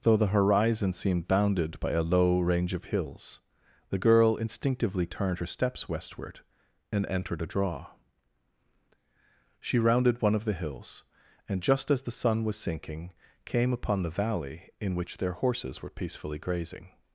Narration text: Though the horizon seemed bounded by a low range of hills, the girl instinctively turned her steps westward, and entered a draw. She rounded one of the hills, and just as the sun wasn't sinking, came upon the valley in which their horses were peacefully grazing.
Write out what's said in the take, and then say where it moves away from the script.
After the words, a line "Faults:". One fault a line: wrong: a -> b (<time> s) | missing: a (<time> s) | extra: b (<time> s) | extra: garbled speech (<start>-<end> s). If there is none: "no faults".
Though the horizon seemed bounded by a low range of hills, the girl instinctively turned her steps westward, and entered a draw. She rounded one of the hills, and just as the sun was sinking, came upon the valley in which their horses were peacefully grazing.
Faults:
wrong: wasn't -> was (12.4 s)